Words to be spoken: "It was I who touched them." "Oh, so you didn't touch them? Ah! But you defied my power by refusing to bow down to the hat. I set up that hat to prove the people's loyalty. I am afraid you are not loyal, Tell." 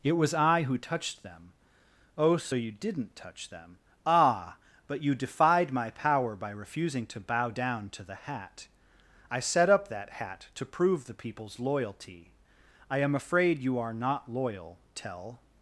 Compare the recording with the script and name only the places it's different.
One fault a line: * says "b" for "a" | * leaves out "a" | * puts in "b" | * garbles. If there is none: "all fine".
all fine